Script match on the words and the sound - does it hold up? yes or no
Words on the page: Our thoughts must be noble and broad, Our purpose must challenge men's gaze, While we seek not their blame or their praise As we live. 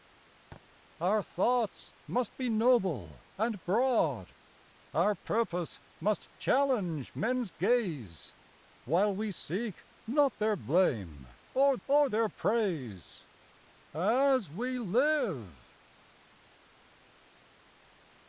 no